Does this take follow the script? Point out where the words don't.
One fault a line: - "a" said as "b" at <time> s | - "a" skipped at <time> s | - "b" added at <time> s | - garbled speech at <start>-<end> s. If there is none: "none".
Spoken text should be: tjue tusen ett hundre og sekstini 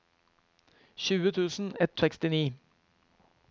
- "hundre og" skipped at 2.0 s